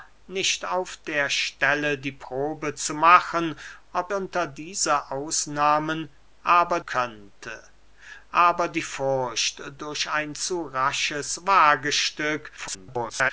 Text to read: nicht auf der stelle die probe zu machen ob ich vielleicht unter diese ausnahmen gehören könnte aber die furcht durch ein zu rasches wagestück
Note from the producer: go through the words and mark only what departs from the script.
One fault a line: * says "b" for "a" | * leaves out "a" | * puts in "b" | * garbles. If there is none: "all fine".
* leaves out "ich vielleicht"
* says "aber" for "gehören"
* garbles